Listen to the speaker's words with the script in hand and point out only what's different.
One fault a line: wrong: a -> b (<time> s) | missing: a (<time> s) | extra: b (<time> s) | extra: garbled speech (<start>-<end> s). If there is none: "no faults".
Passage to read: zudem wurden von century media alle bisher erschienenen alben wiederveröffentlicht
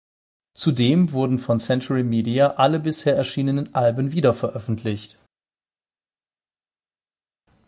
no faults